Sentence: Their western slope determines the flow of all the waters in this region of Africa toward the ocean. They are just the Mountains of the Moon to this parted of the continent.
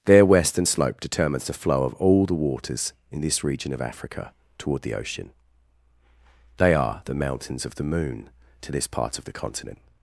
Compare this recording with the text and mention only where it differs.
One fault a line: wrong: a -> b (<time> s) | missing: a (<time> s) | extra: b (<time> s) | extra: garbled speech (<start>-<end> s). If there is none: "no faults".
missing: just (7.0 s)
wrong: parted -> part (8.9 s)